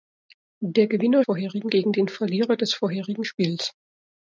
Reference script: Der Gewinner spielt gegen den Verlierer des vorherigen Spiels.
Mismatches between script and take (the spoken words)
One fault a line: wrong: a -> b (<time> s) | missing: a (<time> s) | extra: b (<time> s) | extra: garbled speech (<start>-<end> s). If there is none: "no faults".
wrong: spielt -> vorherigen (1.2 s)